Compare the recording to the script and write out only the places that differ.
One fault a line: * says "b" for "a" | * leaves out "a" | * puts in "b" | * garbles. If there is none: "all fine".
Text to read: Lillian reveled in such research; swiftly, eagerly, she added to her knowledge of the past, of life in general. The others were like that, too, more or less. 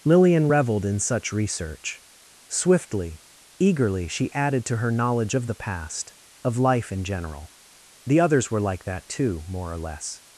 all fine